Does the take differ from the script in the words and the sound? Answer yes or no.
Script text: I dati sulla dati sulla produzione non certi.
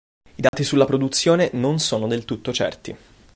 yes